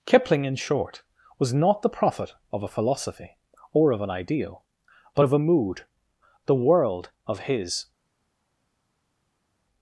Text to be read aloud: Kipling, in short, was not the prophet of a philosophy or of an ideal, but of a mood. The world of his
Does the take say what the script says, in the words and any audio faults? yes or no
yes